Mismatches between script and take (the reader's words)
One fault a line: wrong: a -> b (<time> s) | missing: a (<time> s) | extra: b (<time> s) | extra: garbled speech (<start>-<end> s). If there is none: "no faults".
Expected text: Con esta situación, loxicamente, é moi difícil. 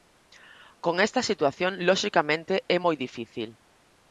no faults